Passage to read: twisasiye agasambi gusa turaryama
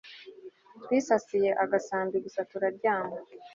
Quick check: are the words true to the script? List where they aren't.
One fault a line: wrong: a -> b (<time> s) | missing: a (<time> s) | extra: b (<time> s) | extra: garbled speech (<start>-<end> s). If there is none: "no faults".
no faults